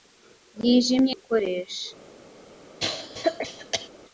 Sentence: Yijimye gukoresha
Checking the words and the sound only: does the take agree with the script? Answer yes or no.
no